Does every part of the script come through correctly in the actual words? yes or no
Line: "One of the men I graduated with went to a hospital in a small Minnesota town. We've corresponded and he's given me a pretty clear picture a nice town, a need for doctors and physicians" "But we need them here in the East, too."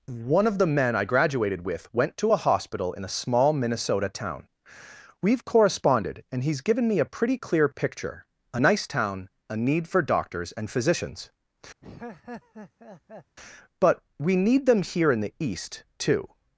yes